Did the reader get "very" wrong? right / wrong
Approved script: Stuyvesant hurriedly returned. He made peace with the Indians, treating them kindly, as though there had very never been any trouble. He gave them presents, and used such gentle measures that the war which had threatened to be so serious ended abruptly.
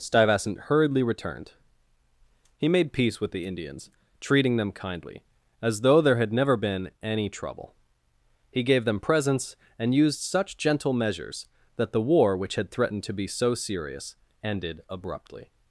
wrong